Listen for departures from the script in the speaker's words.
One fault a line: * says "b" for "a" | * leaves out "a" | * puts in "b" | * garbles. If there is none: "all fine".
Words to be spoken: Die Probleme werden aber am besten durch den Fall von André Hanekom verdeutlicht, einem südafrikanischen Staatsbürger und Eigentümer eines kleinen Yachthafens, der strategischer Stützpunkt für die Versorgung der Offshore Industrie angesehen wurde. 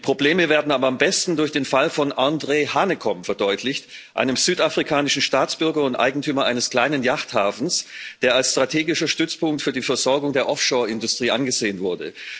* puts in "als"